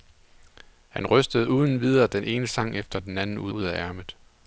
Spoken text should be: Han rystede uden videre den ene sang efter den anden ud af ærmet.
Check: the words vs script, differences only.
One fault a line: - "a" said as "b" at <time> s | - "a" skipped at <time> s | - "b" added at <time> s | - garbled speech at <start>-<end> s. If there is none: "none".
- "ud" added at 3.5 s